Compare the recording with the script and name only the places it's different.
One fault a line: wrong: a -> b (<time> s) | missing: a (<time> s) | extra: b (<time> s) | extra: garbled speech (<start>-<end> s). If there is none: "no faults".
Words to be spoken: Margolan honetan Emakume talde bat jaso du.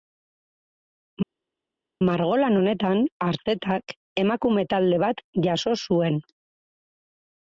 extra: Artetak (3.3 s)
wrong: du -> zuen (5.9 s)